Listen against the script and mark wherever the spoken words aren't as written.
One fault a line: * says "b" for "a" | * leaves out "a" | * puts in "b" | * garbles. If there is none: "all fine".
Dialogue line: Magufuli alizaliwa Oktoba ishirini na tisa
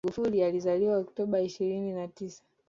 all fine